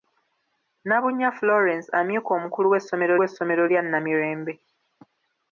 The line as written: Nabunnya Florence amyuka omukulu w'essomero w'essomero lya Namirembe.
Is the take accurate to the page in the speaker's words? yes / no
yes